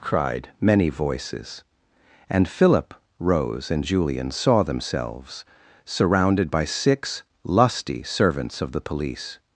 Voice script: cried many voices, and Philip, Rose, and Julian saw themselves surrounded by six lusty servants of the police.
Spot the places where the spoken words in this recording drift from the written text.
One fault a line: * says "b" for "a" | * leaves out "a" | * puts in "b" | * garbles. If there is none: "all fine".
all fine